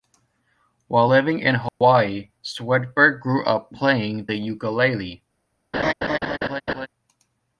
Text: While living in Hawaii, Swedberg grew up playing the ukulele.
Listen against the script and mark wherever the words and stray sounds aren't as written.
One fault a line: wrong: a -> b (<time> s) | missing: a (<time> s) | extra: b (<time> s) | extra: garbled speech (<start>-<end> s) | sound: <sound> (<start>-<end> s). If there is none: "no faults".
sound: dropout (1.7-1.8 s)
sound: laugh (5.7-6.9 s)